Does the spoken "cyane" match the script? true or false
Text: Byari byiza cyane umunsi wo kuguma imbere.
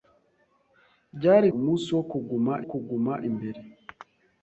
false